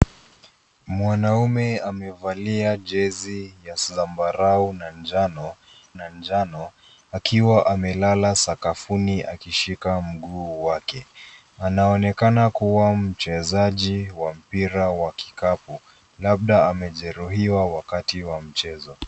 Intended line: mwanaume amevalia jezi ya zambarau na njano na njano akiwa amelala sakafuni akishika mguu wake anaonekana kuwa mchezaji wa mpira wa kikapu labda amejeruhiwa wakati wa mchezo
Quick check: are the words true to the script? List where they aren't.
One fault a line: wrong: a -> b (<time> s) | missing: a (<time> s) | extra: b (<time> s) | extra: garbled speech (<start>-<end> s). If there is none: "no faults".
no faults